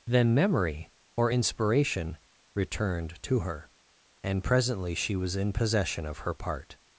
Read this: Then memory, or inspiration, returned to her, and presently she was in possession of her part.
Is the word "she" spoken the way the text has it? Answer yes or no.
yes